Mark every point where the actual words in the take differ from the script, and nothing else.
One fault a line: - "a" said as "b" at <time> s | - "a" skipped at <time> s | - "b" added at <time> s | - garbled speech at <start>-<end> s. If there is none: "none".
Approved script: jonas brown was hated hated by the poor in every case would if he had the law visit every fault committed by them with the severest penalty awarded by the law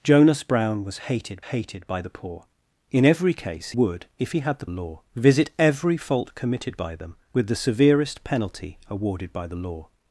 none